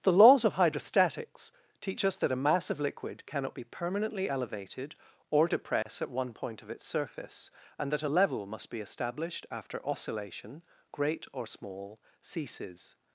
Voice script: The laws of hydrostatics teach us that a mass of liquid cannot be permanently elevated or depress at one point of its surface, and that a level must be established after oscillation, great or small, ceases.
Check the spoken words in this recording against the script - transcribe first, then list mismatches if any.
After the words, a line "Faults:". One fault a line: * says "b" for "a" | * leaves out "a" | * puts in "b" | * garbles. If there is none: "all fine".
The laws of hydrostatics teach us that a mass of liquid cannot be permanently elevated or depress at one point of its surface, and that a level must be established after oscillation, great or small, ceases.
Faults:
all fine